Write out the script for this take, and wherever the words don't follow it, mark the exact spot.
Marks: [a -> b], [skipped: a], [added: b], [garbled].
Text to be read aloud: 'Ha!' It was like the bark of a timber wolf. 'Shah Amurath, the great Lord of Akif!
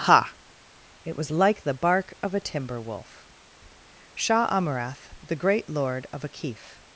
'Ha!' It was like the bark of a timber wolf. 'Shah Amurath, the great Lord of Akif!